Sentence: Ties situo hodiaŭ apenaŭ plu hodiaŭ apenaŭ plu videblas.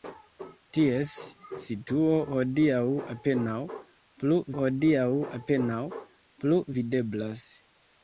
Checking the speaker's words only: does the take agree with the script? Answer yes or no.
yes